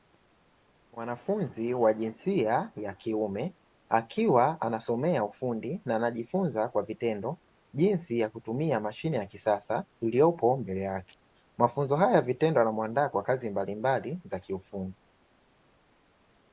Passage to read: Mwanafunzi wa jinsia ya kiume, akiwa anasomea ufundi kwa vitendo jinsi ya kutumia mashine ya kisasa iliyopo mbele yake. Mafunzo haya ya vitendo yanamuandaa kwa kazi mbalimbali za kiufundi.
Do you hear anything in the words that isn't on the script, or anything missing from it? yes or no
yes